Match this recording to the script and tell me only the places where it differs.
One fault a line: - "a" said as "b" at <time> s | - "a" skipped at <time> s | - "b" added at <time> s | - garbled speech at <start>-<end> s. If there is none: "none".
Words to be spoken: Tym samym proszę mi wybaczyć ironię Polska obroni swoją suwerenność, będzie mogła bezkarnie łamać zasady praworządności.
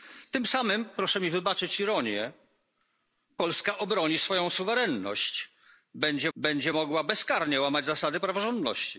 - "będzie" added at 6.3 s